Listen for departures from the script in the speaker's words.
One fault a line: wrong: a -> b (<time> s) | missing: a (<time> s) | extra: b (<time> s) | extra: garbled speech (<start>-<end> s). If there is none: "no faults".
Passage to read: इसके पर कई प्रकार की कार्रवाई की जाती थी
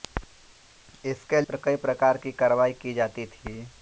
no faults